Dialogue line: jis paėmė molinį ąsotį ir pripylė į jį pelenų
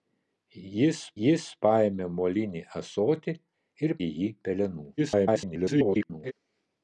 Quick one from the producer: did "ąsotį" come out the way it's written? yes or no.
yes